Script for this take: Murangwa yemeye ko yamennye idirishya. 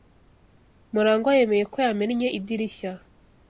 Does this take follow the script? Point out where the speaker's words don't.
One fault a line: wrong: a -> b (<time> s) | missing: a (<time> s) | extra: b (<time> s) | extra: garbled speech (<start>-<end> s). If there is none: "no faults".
no faults